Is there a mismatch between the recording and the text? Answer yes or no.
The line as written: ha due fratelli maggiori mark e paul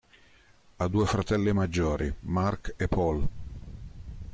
no